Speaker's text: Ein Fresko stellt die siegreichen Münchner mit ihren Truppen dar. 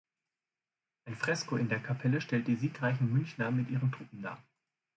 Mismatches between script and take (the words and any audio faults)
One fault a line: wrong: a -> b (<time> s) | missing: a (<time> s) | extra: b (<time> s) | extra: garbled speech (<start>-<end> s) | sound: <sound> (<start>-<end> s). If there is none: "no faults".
extra: in der Kapelle (1.6 s)